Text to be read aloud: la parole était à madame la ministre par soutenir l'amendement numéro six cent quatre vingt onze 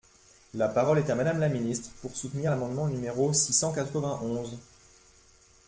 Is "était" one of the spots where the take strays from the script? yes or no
yes